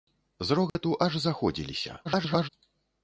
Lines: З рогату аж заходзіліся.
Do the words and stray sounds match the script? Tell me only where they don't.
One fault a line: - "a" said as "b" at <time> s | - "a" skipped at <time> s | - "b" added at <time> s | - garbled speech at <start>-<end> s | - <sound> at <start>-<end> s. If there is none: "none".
- dropout at 0.7-0.8 s
- garbled speech at 2.0-2.5 s